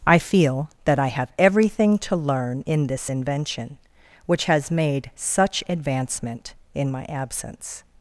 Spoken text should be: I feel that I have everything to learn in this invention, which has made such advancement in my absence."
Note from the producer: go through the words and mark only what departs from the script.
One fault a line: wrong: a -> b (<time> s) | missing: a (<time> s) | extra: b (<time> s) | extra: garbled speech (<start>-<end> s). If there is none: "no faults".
no faults